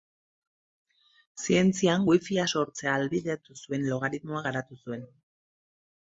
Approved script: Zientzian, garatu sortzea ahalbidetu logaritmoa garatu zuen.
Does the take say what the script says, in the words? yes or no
no